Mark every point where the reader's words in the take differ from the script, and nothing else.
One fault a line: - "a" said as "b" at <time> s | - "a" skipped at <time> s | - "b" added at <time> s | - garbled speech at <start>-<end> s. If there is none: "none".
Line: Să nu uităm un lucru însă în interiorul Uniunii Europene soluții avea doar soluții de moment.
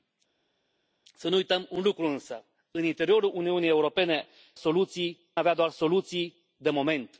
none